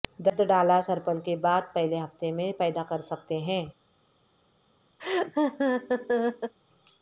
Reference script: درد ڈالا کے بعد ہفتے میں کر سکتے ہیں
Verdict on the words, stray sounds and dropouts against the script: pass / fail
fail